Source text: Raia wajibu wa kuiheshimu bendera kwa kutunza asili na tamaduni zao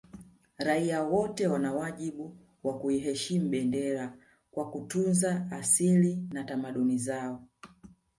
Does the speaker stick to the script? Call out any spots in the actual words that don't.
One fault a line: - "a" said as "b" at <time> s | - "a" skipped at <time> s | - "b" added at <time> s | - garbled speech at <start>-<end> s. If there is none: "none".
- "wote wana" added at 1.0 s